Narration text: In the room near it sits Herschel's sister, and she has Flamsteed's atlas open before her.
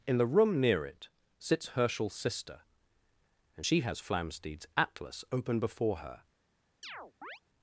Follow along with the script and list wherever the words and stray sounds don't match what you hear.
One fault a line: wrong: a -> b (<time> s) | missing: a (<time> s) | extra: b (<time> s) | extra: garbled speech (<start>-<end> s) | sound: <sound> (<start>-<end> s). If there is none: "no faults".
sound: chirp (6.8-7.4 s)